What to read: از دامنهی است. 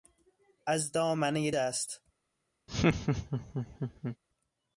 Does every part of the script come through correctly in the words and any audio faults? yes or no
no